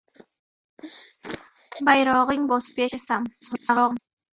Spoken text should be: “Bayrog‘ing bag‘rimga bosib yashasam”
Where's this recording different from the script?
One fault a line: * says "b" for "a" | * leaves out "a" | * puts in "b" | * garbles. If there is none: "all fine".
* leaves out "bag‘rimga"
* garbles